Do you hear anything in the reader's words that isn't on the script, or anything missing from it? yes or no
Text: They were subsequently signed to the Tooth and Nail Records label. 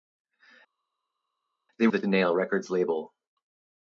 yes